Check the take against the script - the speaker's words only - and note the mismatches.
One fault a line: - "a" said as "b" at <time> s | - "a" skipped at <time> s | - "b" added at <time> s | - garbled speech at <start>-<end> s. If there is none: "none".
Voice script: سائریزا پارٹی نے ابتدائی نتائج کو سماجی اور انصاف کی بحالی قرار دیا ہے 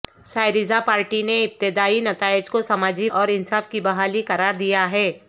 none